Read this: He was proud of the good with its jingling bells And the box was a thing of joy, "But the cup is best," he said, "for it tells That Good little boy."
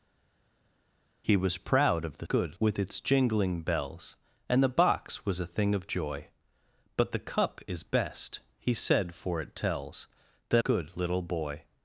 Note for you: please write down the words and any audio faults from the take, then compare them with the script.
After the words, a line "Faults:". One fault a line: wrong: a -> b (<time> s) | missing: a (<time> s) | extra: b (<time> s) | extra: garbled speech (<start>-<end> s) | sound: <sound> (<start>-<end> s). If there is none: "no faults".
He was proud of the good with its jingling bells And the box was a thing of joy, "But the cup is best," he said, "for it tells That Good little boy."
Faults:
no faults